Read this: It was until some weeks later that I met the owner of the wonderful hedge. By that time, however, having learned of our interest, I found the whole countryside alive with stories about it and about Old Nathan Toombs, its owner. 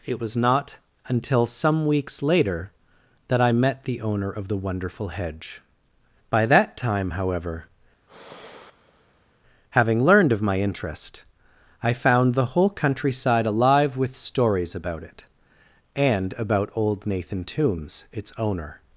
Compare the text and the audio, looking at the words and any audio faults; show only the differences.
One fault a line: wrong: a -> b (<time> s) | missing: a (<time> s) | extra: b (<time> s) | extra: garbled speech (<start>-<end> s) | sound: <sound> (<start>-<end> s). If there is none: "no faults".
extra: not (0.4 s)
sound: sigh (8.1-9.4 s)
wrong: our -> my (10.4 s)